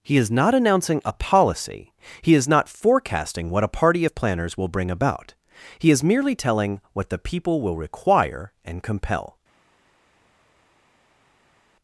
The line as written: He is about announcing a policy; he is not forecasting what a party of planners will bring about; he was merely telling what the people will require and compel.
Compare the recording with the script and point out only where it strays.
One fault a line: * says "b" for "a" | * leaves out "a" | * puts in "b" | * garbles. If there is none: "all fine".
* says "not" for "about"
* says "is" for "was"